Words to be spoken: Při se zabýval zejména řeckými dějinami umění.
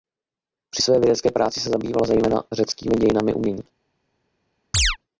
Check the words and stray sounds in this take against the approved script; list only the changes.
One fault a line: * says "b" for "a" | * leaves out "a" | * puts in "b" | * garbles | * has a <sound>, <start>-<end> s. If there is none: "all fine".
* puts in "své vědecké práci"
* has a chirp, 4.7-5.0 s